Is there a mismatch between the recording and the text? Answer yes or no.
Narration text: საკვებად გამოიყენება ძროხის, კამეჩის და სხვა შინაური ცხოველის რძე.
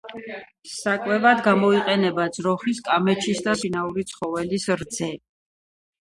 yes